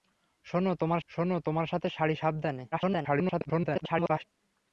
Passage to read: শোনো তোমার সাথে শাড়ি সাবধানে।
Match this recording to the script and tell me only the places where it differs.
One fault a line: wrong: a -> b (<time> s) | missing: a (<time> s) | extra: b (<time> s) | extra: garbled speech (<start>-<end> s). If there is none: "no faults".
extra: শোনো তোমার (1.1 s)
extra: garbled speech (2.7-4.2 s)